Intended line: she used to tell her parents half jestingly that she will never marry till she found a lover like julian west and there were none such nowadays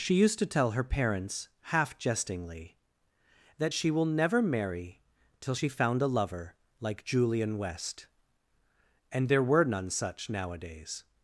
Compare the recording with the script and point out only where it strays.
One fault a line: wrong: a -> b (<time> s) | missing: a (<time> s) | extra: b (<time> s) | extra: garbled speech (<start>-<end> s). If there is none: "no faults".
no faults